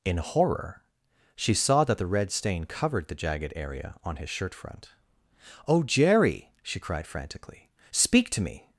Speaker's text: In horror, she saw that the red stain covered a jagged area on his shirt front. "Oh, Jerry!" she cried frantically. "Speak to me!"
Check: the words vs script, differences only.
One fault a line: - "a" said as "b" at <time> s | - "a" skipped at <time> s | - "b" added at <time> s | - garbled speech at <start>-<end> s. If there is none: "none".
- "a" said as "the" at 3.1 s